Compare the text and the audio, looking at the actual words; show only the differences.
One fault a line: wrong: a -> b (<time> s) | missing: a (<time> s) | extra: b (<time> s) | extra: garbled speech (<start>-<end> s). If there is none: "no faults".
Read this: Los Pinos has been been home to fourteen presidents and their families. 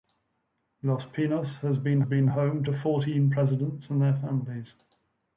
no faults